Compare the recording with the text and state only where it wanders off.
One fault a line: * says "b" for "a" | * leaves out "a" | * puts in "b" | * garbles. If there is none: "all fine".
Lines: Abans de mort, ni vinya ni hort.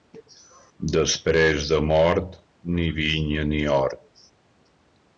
* says "Després" for "Abans"